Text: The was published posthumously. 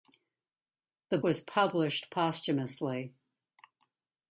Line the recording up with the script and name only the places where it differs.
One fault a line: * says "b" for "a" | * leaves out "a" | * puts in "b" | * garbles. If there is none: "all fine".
all fine